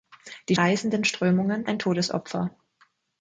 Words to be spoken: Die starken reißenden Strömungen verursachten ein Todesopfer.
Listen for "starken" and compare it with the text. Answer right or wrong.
wrong